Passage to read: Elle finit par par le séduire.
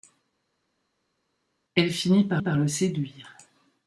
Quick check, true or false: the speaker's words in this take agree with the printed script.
true